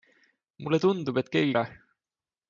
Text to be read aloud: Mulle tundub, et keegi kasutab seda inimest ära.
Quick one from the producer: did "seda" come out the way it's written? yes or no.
no